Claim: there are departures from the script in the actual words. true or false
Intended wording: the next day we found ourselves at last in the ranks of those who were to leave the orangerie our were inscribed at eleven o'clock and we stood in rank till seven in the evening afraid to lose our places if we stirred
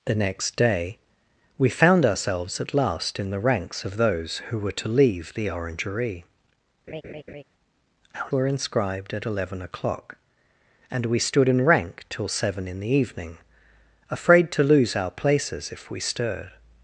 false